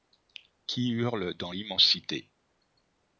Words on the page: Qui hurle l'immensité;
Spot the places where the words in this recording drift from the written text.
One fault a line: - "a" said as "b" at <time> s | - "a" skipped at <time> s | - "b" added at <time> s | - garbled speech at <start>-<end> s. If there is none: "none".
- "dans" added at 1.3 s